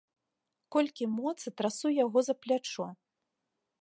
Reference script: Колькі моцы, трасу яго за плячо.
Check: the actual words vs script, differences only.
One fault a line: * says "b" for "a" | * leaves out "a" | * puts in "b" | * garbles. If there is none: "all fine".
all fine